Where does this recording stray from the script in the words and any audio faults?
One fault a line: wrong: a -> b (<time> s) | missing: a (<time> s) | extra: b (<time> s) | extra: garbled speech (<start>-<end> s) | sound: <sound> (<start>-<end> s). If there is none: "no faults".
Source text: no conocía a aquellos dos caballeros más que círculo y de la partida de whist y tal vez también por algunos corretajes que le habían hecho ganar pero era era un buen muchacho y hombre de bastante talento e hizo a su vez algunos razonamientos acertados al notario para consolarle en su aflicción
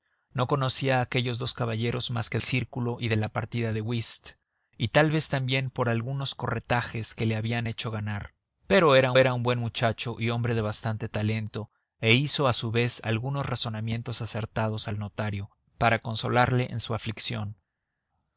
no faults